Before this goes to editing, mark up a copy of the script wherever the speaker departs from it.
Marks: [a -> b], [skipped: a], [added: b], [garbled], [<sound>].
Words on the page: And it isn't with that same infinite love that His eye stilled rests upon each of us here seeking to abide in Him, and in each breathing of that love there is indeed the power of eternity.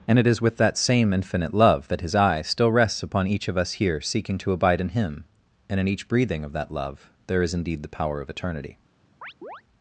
And it [isn't -> is] with that same infinite love that His eye [stilled -> still] rests upon each of us here seeking to abide in Him, and in each breathing of that love there is indeed the power of eternity. [chirp]